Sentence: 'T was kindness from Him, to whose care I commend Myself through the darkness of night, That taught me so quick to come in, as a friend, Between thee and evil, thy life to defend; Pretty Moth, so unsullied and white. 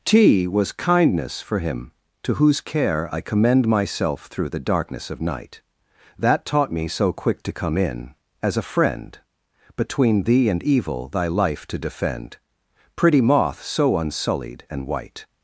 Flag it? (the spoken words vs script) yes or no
yes